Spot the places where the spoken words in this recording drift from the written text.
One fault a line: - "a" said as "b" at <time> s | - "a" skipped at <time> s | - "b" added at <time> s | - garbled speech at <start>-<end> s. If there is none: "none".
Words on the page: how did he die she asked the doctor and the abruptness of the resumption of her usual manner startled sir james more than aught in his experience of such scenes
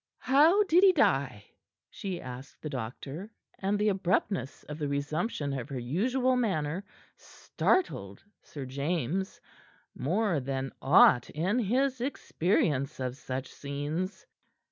none